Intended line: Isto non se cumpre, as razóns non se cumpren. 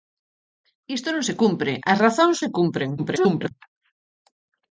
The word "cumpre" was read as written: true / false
true